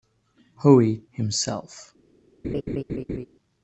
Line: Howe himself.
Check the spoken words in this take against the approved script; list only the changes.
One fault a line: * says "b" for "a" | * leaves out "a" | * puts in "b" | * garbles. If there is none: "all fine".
all fine